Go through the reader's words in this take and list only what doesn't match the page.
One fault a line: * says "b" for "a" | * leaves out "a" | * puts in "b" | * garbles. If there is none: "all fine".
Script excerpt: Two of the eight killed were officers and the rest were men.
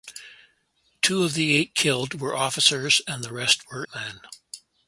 all fine